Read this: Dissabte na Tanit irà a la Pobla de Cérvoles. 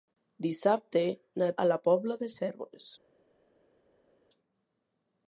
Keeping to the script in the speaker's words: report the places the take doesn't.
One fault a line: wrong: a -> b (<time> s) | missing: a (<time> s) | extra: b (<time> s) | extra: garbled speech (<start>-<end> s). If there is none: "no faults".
missing: Tanit irà (1.5 s)